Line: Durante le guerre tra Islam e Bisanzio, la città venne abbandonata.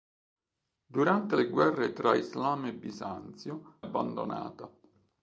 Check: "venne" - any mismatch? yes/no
yes